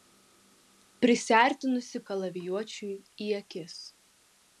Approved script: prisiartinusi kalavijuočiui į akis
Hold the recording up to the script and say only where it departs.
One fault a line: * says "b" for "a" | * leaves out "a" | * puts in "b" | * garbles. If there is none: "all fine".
all fine